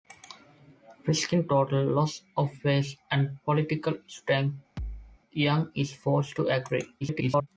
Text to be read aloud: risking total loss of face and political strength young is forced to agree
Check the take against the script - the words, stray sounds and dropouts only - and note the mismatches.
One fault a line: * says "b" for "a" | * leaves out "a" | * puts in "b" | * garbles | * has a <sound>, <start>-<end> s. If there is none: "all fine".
* has a thud, 4.8-5.2 s
* garbles